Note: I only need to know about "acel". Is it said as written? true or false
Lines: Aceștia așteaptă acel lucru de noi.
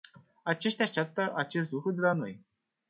false